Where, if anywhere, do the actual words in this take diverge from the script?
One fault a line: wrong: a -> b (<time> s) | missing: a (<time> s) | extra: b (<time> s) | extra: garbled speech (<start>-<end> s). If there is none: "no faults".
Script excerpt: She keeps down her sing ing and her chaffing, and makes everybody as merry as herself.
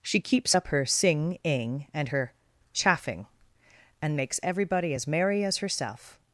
wrong: down -> up (0.5 s)